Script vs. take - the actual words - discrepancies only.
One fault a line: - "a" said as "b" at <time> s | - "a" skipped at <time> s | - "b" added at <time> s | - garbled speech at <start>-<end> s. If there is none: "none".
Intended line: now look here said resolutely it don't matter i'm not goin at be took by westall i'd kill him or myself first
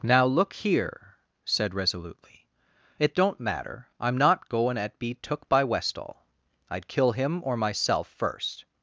none